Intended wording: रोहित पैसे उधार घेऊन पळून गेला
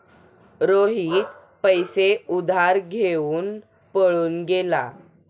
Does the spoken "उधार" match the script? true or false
true